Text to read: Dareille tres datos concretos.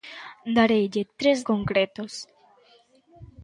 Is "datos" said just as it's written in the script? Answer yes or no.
no